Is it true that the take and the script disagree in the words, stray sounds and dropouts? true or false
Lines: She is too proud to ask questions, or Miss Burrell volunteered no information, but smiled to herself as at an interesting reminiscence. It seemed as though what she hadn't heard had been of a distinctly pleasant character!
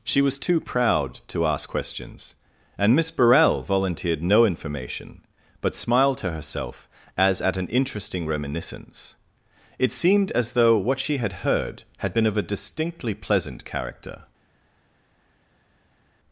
true